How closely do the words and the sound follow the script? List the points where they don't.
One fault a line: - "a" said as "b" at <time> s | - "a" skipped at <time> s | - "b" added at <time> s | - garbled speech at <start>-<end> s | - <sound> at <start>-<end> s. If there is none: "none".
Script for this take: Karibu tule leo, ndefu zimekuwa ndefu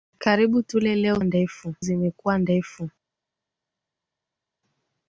none